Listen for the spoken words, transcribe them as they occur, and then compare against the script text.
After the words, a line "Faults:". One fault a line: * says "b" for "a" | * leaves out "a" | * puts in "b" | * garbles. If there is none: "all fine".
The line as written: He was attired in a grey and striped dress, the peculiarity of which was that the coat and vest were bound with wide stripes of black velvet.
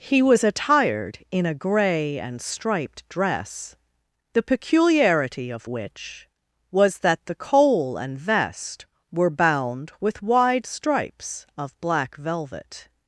He was attired in a grey and striped dress, the peculiarity of which was that the coal and vest were bound with wide stripes of black velvet.
Faults:
* says "coal" for "coat"